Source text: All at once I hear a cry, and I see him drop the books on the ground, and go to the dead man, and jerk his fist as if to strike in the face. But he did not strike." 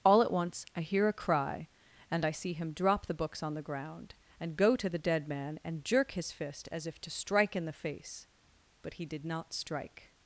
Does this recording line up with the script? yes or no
yes